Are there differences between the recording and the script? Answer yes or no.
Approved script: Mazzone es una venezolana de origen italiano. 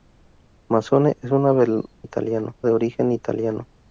yes